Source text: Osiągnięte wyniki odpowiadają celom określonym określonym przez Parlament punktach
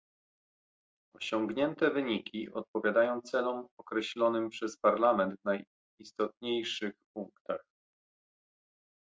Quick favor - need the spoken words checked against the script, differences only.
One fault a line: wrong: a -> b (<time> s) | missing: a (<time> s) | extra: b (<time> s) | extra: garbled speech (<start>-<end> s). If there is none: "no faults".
missing: określonym (4.5 s)
extra: w najistotniejszych (5.4 s)